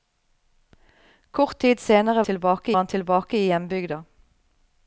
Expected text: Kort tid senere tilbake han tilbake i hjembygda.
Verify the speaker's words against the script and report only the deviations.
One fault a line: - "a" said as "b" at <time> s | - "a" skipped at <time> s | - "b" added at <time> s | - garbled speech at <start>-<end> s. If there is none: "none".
none